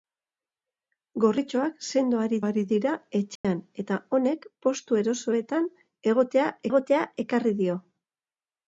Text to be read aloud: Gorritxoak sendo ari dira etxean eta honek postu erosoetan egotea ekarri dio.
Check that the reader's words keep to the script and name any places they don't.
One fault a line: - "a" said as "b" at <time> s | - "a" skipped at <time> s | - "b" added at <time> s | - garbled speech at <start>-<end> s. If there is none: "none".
- "ari" added at 2.4 s
- "egotea" added at 6.7 s